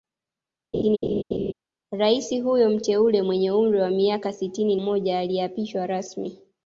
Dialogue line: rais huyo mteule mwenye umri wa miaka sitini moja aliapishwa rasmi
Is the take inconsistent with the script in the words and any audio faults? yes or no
yes